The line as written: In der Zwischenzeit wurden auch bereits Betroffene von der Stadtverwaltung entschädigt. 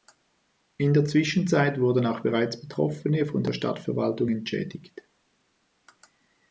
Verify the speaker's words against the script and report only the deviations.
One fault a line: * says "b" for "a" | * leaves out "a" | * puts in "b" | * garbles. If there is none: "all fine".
all fine